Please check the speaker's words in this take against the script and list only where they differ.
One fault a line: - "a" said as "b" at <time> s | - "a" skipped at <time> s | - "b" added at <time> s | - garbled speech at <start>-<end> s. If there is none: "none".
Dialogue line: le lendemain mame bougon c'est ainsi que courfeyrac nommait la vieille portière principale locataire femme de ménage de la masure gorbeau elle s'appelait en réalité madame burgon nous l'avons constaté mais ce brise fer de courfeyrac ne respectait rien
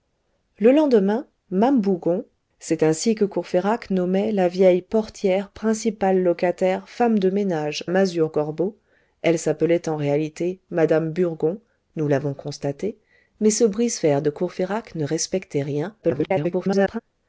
- "de la" skipped at 7.8 s
- garbled speech at 16.0-17.0 s